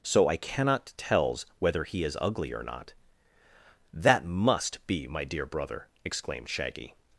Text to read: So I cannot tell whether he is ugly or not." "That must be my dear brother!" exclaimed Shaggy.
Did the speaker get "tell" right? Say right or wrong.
wrong